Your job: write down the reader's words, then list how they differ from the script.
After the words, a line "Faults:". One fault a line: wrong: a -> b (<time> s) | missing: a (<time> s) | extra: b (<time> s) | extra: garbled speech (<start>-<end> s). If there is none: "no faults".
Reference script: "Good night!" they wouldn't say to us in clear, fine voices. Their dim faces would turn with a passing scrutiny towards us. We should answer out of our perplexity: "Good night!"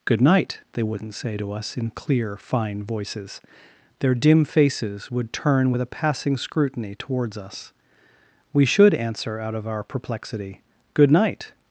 "Good night!" they wouldn't say to us in clear, fine voices. Their dim faces would turn with a passing scrutiny towards us. We should answer out of our perplexity: "Good night!"
Faults:
no faults